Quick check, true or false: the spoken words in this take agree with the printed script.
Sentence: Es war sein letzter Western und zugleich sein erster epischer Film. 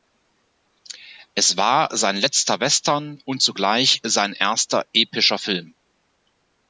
true